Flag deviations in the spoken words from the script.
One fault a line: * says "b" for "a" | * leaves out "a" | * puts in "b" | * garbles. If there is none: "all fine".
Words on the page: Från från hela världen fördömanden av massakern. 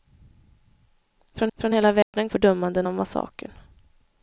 all fine